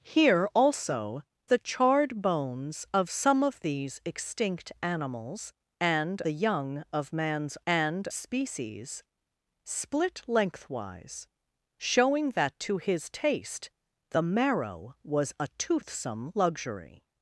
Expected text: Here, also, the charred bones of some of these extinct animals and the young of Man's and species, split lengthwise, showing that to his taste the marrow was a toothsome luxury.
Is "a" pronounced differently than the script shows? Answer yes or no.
no